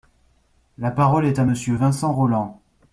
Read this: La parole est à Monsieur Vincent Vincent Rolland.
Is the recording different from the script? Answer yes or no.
yes